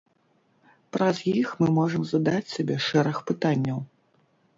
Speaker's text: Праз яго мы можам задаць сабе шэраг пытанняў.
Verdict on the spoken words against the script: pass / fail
fail